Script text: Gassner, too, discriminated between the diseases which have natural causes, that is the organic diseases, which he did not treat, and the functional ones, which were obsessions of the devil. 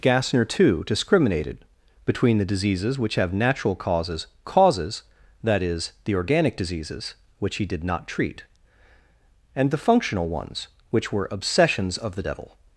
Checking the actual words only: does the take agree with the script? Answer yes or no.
no